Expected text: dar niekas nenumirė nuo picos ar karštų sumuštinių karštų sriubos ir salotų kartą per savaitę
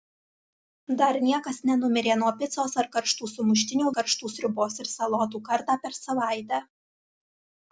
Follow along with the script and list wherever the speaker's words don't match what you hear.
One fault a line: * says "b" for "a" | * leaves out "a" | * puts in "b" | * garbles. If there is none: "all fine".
all fine